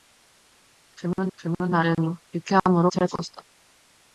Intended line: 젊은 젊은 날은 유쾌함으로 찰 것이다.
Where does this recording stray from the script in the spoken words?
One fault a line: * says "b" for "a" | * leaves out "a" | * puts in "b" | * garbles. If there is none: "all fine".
all fine